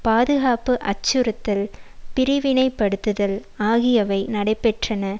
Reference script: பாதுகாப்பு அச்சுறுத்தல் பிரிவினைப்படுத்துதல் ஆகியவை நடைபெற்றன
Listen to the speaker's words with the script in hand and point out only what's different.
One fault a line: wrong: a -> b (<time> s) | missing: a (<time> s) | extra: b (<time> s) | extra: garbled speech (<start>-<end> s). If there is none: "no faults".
no faults